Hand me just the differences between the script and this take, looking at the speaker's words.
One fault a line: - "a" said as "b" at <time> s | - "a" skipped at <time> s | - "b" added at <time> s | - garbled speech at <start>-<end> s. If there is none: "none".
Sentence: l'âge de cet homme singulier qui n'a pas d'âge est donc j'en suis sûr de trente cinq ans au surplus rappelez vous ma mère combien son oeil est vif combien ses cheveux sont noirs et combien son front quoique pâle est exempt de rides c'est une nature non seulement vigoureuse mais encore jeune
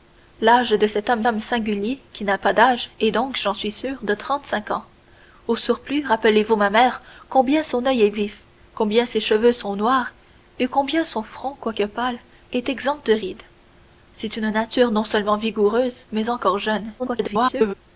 - "homme" added at 1.3 s
- garbled speech at 17.0-17.7 s